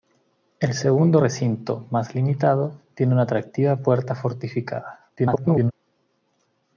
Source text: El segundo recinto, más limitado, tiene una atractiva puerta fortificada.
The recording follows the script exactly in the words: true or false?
false